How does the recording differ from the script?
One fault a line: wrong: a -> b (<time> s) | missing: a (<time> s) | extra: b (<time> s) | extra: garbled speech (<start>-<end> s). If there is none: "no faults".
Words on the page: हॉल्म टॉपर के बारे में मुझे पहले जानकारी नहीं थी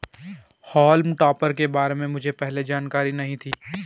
no faults